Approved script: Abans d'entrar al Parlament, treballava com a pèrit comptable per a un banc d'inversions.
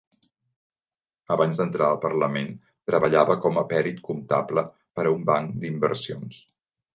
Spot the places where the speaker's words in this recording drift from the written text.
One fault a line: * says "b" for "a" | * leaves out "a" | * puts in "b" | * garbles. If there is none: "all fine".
all fine